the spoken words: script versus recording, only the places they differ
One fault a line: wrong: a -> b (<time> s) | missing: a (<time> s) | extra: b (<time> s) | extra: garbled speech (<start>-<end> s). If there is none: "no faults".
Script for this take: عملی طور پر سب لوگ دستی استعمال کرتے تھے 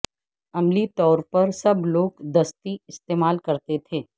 no faults